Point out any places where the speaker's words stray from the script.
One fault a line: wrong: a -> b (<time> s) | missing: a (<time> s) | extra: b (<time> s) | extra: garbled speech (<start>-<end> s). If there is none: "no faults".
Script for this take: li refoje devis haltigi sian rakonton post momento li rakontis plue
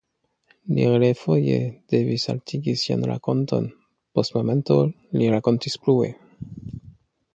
no faults